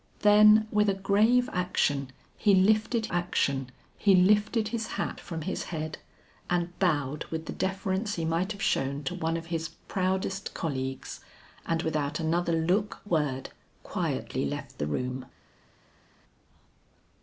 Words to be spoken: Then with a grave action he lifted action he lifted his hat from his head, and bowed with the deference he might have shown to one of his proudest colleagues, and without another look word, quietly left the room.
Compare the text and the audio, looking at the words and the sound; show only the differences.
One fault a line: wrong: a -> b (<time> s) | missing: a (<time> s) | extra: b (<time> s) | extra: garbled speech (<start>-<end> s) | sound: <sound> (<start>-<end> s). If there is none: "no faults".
no faults